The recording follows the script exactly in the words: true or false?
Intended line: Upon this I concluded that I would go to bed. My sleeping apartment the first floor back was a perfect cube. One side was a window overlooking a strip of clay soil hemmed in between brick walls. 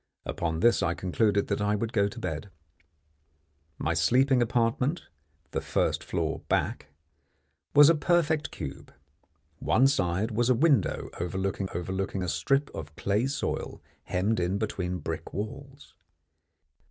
false